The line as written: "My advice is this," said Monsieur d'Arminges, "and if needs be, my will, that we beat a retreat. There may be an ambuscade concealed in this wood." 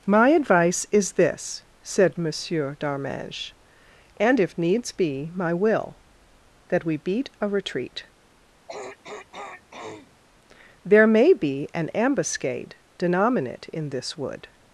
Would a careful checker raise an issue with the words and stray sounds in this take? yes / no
yes